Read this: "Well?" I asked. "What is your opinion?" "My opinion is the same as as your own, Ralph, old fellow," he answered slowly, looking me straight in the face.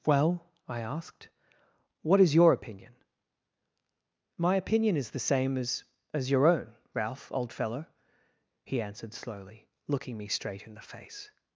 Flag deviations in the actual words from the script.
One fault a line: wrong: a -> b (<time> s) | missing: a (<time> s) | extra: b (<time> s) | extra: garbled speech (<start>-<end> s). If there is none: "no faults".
no faults